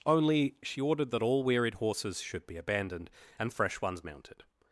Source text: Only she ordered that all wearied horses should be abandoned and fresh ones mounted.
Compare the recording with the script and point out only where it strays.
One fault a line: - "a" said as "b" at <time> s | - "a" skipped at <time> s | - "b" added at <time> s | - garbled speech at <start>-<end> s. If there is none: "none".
none